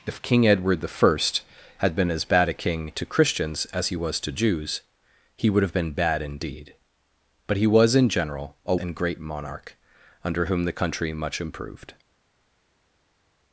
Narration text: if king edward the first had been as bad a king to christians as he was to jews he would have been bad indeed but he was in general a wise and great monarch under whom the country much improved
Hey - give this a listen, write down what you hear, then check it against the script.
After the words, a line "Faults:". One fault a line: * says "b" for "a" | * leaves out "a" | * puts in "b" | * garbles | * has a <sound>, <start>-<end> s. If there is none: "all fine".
if king edward the first had been as bad a king to christians as he was to jews he would have been bad indeed but he was in general a and great monarch under whom the country much improved
Faults:
* leaves out "wise"